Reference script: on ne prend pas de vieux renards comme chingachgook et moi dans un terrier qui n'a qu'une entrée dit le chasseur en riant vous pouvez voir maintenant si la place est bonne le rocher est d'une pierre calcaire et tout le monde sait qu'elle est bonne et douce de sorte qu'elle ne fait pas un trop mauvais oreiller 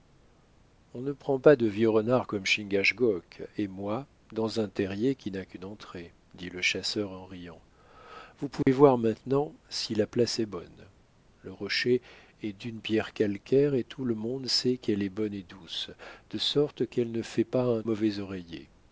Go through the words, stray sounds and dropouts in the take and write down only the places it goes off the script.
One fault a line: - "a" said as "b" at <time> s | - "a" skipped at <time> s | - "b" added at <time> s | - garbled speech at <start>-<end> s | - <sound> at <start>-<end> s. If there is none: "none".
- dropout at 8.6-8.7 s
- "trop" skipped at 17.8 s